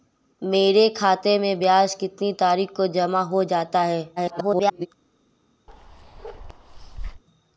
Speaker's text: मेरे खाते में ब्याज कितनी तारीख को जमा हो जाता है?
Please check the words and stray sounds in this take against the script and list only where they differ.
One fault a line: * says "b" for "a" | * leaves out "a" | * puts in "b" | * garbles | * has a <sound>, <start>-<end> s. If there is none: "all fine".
* garbles
* has a bark, 5.7-7.2 s